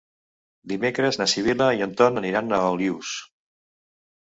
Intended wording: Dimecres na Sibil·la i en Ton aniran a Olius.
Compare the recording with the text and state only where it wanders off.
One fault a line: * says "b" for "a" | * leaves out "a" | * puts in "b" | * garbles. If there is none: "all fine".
all fine